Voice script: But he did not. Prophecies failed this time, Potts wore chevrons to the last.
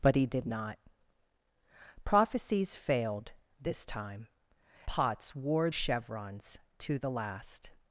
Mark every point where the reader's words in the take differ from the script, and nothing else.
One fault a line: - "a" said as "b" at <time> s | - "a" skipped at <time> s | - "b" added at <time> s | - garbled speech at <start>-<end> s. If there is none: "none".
none